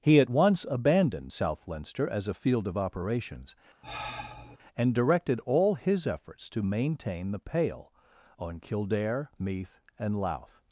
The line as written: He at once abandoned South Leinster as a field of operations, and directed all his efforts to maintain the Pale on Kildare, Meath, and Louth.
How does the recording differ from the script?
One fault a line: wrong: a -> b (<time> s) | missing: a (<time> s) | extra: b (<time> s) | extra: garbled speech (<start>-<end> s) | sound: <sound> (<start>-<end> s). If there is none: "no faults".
sound: sigh (3.8-4.6 s)